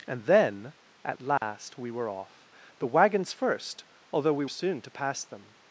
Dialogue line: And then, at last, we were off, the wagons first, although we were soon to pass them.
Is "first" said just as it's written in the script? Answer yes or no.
yes